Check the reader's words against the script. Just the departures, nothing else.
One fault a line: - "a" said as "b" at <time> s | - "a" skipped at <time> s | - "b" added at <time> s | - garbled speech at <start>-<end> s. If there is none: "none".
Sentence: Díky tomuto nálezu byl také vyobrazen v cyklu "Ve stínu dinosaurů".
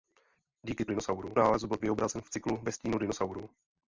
- "tomuto" said as "dinosaurů" at 0.9 s
- "také" skipped at 1.8 s